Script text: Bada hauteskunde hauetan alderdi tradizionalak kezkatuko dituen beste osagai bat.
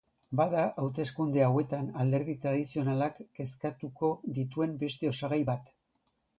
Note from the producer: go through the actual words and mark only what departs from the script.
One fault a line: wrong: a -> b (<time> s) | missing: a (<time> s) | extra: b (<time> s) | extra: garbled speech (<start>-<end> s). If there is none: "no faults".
no faults